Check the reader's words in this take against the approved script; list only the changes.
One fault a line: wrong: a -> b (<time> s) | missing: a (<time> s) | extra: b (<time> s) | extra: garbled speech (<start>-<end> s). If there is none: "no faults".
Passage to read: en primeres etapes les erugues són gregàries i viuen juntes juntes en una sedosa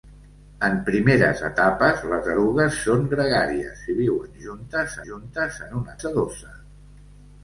no faults